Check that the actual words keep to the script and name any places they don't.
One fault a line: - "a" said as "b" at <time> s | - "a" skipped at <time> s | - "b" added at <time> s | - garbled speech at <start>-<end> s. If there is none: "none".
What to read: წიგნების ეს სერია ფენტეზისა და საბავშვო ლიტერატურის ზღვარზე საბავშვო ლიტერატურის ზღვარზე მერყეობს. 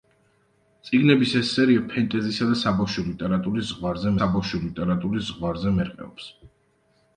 none